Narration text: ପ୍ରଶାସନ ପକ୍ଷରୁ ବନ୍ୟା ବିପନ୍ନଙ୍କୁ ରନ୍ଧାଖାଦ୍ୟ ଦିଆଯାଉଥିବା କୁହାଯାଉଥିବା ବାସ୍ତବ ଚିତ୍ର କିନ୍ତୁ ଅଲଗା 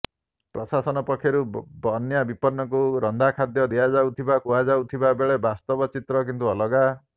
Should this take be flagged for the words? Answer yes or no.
yes